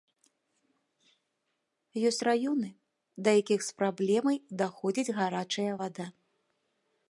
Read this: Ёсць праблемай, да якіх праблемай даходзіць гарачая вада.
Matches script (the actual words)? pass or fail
fail